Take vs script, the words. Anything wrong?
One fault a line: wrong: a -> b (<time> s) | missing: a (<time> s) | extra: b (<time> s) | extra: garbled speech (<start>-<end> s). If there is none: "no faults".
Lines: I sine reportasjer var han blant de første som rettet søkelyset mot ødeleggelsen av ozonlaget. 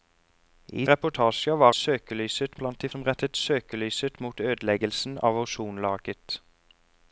missing: sine (0.8 s)
wrong: han -> søkelyset (1.7 s)
missing: første (2.9 s)